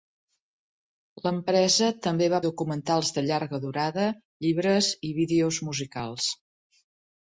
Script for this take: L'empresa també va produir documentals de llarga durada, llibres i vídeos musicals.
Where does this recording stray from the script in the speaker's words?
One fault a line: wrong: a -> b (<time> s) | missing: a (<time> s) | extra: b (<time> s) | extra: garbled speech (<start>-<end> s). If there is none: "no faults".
missing: produir (2.4 s)